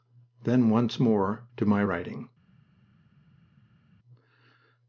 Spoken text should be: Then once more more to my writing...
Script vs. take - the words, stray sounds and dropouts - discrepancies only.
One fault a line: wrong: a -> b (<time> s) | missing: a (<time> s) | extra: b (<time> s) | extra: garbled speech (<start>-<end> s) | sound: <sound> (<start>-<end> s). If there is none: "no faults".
missing: more (1.4 s)